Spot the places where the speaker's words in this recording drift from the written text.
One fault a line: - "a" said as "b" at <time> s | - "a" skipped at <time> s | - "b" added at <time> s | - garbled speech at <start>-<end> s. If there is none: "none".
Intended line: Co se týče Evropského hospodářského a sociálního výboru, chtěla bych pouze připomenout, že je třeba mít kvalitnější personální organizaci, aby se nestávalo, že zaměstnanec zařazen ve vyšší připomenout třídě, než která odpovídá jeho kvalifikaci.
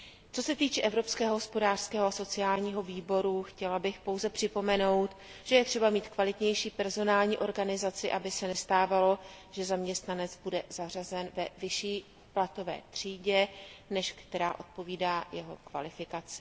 - "bude" added at 10.4 s
- "připomenout" said as "platové" at 12.3 s